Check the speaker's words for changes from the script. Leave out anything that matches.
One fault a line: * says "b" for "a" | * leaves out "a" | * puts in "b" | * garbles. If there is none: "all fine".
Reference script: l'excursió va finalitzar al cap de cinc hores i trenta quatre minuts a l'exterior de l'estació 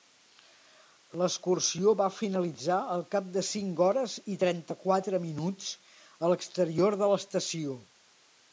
all fine